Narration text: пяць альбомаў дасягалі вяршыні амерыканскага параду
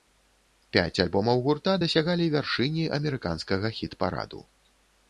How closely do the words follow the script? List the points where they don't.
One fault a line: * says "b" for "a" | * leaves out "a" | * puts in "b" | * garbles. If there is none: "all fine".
* puts in "гурта"
* puts in "хіт"